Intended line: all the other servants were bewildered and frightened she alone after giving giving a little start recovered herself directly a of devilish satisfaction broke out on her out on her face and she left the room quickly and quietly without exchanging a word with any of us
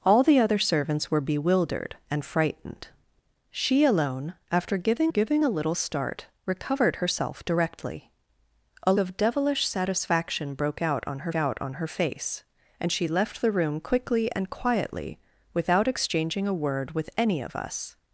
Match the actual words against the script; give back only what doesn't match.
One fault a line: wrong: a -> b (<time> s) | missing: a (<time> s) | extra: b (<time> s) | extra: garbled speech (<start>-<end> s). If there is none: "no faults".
no faults